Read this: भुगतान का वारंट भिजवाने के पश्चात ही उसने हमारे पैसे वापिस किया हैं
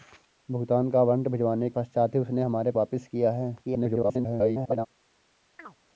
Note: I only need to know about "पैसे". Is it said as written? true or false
false